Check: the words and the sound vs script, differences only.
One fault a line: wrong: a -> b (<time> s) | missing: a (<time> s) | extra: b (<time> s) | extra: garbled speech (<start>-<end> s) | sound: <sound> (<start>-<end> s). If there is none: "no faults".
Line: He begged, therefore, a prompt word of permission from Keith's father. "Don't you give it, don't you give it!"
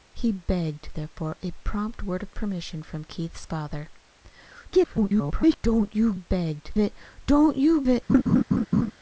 extra: garbled speech (4.7-5.6 s)
wrong: give -> begged (6.1 s)
missing: give (7.8 s)
sound: laugh (8.1-8.9 s)